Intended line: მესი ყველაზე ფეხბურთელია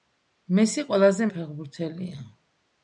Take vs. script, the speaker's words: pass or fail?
pass